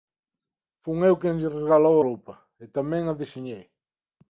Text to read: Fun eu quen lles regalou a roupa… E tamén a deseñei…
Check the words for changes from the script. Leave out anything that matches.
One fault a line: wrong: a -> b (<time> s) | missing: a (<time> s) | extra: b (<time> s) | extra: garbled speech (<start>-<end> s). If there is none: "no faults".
missing: a (2.0 s)